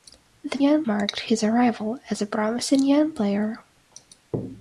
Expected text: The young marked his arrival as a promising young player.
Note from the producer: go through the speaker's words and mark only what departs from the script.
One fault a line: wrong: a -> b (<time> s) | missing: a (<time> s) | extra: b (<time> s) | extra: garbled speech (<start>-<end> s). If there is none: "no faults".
no faults